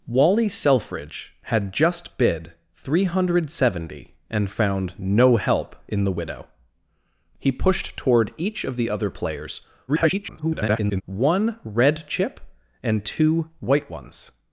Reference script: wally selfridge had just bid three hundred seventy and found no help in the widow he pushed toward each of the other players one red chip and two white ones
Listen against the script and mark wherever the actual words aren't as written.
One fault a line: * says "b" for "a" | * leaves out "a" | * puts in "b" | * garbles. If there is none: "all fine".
* garbles